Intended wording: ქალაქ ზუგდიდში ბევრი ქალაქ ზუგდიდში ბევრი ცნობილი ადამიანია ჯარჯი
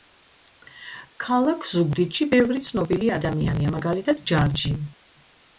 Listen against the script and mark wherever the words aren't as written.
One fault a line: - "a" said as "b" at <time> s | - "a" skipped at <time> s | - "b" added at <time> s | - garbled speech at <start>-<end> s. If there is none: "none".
- "ქალაქ ზუგდიდში ბევრი" skipped at 2.6 s
- "მაგალითად" added at 3.8 s